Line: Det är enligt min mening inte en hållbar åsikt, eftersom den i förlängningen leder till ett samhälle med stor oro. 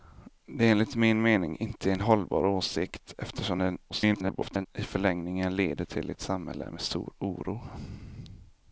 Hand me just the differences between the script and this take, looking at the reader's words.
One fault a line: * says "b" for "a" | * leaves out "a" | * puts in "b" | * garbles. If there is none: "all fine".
* garbles